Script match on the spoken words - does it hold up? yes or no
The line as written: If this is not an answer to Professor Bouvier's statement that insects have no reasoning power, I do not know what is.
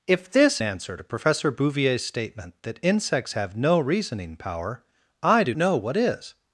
no